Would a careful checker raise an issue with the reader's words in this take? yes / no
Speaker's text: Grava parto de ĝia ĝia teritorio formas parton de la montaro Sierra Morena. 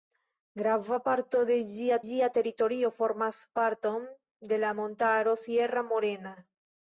no